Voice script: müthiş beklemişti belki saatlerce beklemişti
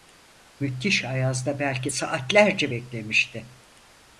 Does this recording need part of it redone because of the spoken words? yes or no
yes